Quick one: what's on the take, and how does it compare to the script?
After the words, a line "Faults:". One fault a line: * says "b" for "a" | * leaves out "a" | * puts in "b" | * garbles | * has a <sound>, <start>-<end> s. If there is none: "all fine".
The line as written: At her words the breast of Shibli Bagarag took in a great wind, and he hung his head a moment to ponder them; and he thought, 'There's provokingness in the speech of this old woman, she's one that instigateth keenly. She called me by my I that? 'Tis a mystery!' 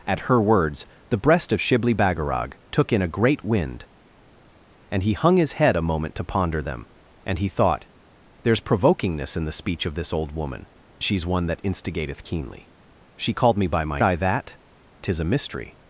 At her words the breast of Shibli Bagarag took in a great wind, and he hung his head a moment to ponder them; and he thought, 'There's provokingness in the speech of this old woman, she's one that instigateth keenly. She called me by my I that? 'Tis a mystery!'
Faults:
all fine